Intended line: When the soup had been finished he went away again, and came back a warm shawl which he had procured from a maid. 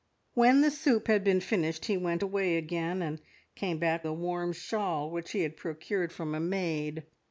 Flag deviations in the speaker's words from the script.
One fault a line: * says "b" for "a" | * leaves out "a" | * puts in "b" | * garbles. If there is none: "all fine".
all fine